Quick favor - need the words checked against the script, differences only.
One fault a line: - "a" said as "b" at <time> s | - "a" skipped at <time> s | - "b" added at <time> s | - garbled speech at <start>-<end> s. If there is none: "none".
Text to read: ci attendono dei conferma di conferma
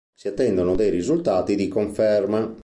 - "ci" said as "si" at 0.1 s
- "conferma" said as "risultati" at 0.9 s